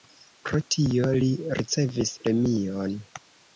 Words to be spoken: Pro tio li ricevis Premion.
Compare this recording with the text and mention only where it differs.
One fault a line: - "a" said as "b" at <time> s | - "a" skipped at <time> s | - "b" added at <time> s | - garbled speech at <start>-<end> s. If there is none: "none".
none